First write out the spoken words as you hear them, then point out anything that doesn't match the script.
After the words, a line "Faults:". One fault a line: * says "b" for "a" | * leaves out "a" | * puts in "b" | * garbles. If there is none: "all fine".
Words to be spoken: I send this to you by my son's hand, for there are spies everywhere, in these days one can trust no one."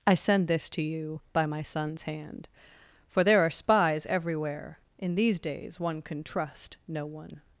I send this to you by my son's hand, for there are spies everywhere, in these days one can trust no one."
Faults:
all fine